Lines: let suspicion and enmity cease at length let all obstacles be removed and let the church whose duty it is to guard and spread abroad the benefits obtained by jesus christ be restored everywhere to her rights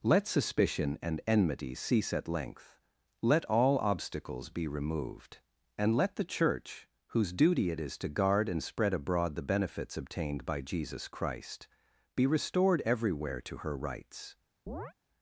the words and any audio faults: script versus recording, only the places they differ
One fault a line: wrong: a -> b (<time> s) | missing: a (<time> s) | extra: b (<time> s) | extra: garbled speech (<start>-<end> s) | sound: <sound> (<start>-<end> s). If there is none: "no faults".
sound: chirp (14.7-14.9 s)